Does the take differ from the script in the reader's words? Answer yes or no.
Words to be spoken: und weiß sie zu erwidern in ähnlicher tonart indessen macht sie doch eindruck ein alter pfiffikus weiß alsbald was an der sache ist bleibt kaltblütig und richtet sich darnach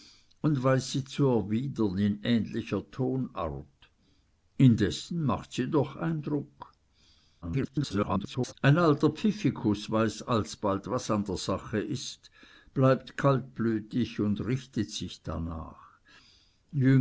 yes